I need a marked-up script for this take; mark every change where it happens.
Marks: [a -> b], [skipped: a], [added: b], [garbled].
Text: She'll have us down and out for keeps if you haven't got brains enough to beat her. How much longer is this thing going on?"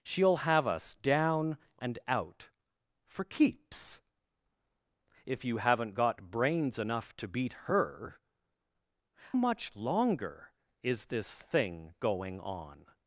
She'll have us down and out for keeps if you haven't got brains enough to beat her. [skipped: How] much longer is this thing going on?"